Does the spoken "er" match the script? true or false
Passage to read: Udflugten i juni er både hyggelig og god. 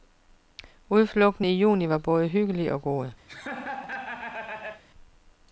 false